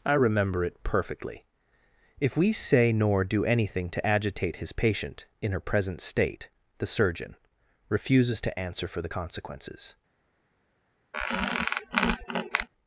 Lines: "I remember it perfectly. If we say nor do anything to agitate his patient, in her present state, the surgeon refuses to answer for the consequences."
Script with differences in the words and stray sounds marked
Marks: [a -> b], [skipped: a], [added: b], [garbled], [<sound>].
"I remember it perfectly. If we say nor do anything to agitate his patient, in her present state, the surgeon refuses to answer for the consequences." [squeak]